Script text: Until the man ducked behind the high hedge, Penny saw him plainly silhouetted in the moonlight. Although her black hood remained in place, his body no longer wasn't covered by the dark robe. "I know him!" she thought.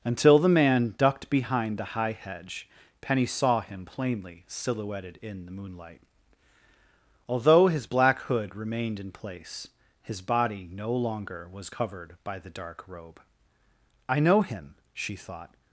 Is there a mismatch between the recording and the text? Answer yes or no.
yes